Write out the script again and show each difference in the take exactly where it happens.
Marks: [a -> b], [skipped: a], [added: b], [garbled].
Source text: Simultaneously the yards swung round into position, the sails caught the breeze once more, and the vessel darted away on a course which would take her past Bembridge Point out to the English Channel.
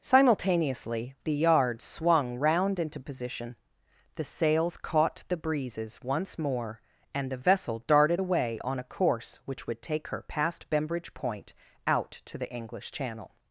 Simultaneously the yards swung round into position, the sails caught the [breeze -> breezes] once more, and the vessel darted away on a course which would take her past Bembridge Point out to the English Channel.